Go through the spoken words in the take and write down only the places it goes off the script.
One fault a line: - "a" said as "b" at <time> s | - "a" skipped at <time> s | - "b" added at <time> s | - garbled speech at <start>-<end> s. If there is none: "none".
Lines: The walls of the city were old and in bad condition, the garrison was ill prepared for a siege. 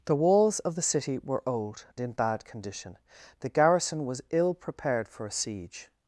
- "and" skipped at 1.9 s